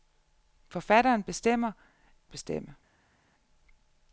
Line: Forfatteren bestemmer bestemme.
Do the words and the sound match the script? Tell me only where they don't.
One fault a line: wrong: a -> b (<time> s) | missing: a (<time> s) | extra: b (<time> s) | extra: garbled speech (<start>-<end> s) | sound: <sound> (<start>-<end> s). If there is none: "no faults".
no faults